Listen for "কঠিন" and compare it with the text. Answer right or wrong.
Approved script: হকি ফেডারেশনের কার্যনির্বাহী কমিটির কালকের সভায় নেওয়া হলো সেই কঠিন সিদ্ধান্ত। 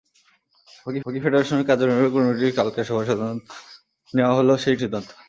wrong